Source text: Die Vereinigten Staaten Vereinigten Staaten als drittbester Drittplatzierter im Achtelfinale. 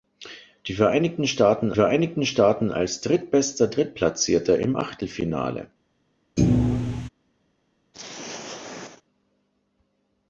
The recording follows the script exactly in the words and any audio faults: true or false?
false